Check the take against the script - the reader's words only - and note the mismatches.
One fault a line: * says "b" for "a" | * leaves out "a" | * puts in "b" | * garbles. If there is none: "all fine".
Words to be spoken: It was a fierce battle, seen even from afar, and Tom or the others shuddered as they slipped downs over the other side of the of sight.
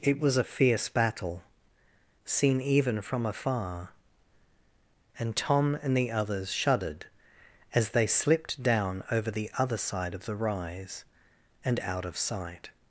* says "and" for "or"
* says "down" for "downs"
* puts in "rise and out"